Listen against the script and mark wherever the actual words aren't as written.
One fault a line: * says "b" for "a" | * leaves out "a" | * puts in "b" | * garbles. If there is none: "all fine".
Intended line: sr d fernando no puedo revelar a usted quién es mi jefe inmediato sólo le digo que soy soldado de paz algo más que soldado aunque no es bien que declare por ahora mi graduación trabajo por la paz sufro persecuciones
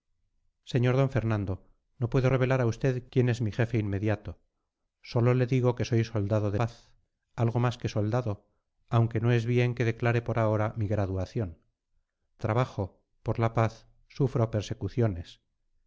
all fine